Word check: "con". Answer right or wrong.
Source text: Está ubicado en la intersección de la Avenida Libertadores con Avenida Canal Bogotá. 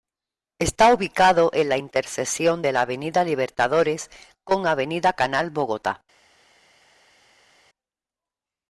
right